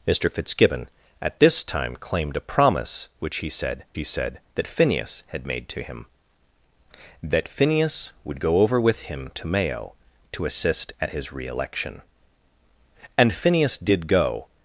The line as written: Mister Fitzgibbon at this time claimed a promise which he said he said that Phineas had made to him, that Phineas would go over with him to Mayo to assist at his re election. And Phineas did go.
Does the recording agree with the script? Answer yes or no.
yes